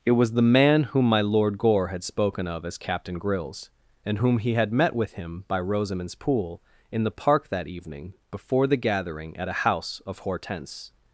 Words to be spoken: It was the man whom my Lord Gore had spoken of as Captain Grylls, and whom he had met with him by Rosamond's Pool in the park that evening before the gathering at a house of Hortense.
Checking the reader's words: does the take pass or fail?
pass